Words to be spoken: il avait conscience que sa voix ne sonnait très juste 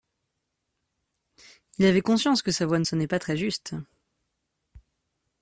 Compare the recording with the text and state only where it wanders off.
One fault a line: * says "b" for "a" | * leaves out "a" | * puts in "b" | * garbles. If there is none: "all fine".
* puts in "pas"